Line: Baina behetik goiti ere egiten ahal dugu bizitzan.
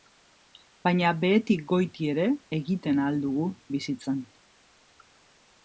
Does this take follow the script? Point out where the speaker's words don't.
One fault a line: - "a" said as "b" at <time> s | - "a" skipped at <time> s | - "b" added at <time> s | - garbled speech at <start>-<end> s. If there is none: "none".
none